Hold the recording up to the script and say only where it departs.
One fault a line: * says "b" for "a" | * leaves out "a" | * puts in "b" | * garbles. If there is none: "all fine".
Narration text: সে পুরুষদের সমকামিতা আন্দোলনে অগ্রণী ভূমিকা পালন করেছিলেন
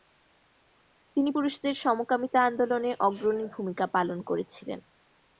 * says "তিনি" for "সে"